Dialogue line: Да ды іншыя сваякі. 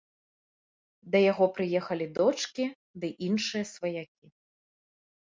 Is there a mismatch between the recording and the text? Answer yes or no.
yes